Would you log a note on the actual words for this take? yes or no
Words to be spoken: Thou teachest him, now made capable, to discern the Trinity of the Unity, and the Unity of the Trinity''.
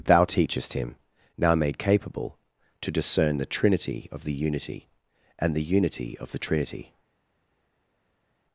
no